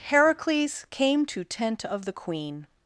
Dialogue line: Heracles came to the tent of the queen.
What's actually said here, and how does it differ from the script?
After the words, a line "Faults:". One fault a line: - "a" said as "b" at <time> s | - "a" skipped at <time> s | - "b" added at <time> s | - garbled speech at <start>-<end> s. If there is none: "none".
Heracles came to tent of the queen.
Faults:
- "the" skipped at 1.4 s